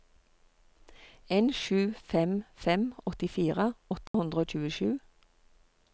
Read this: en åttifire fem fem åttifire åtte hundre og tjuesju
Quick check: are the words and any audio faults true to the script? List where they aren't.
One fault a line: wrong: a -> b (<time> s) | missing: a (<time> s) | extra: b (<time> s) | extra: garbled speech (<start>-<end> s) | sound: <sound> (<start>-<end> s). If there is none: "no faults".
wrong: åttifire -> sju (1.6 s)
sound: dropout (4.1-4.1 s)